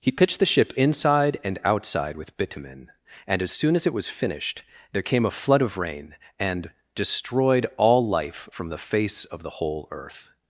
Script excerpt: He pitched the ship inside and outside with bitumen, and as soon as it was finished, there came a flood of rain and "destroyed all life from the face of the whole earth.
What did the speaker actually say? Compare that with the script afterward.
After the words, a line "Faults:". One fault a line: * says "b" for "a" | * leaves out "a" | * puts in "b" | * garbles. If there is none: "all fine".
He pitched the ship inside and outside with bitumen, and as soon as it was finished, there came a flood of rain and "destroyed all life from the face of the whole earth.
Faults:
all fine